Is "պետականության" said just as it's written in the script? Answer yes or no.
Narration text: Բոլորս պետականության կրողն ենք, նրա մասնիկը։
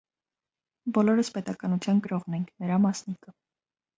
yes